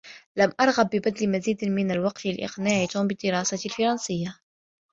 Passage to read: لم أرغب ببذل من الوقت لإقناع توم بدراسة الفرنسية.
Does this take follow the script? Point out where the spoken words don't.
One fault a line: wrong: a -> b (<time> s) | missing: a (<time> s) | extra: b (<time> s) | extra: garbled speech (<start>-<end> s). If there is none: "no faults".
extra: مزيد (1.3 s)